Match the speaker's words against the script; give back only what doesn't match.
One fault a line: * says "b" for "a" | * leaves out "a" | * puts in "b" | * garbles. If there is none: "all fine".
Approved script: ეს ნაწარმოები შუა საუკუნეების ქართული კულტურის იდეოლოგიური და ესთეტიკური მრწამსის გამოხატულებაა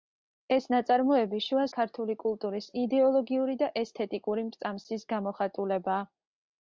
* leaves out "საუკუნეების"